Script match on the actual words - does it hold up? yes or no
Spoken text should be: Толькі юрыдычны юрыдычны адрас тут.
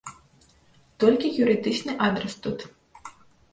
no